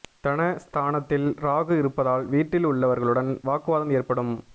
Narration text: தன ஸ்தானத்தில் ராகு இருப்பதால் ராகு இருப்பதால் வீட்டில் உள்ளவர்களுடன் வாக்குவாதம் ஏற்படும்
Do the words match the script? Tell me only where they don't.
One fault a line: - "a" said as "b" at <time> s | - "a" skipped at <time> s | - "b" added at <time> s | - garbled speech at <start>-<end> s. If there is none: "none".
- "ராகு இருப்பதால்" skipped at 2.2 s